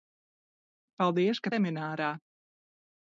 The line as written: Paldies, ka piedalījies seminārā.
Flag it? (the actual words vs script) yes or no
yes